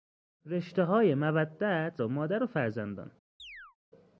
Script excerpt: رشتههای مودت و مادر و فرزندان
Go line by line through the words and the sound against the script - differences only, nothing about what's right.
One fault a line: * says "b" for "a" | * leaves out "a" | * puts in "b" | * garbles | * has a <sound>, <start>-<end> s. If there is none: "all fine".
* has a chirp, 3.4-3.8 s